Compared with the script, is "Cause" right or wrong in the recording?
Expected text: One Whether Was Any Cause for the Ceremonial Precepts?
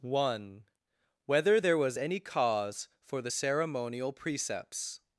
right